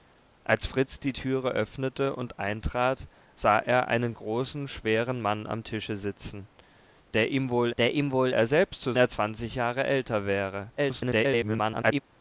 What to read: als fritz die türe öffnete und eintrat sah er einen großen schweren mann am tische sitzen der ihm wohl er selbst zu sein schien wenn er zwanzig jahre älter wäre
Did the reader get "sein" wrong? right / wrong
wrong